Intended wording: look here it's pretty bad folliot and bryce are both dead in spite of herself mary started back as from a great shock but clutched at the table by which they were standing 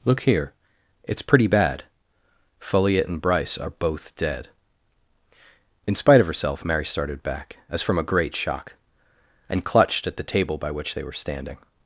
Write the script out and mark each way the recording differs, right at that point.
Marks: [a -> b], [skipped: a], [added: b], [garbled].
look here it's pretty bad folliot and bryce are both dead in spite of herself mary started back as from a great shock [but -> and] clutched at the table by which they were standing